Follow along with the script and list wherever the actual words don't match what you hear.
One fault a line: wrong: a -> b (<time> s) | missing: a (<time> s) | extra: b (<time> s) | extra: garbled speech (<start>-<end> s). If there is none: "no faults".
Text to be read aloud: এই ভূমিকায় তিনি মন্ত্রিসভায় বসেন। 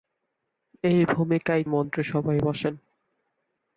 missing: তিনি (1.6 s)